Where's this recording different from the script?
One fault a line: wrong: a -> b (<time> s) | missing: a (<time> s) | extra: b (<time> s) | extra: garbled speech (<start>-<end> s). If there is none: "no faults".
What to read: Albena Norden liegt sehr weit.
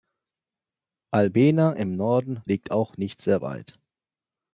extra: im (1.7 s)
extra: auch nicht (2.7 s)